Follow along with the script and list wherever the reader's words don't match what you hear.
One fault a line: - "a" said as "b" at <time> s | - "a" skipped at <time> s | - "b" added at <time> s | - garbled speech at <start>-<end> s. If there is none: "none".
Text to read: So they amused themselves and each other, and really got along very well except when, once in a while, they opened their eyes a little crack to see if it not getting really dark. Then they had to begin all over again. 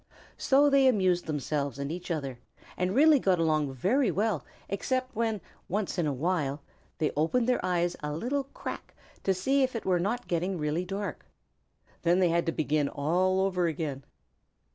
- "were" added at 9.8 s